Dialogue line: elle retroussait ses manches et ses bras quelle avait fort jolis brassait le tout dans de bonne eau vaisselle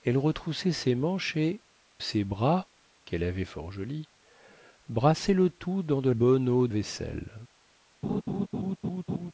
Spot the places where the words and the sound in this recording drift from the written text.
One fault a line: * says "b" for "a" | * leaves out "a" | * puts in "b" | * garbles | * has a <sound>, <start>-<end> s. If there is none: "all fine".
* has a laugh, 8.0-9.3 s